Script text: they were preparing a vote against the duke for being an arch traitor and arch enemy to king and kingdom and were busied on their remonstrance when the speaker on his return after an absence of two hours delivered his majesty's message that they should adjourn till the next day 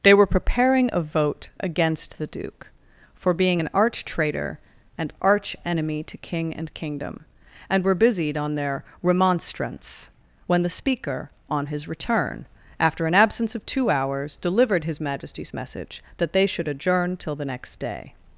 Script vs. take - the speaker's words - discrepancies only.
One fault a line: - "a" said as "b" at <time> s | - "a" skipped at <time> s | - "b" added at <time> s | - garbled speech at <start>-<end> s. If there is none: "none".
none